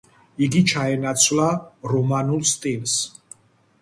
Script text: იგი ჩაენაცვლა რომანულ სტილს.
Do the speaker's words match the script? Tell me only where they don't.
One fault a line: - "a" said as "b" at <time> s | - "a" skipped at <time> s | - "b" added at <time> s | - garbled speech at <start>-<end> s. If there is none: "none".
none